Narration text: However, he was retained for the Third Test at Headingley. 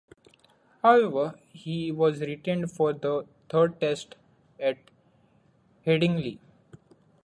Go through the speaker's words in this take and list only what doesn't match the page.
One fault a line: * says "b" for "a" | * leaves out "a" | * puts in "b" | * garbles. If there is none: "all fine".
all fine